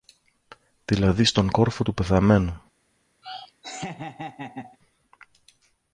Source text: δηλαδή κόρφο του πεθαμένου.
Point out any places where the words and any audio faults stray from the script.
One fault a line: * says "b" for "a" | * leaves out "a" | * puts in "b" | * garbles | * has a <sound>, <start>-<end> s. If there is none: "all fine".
* puts in "στον"
* has a laugh, 3.2-4.8 s